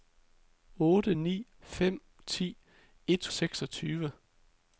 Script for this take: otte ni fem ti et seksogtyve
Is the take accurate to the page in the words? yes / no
yes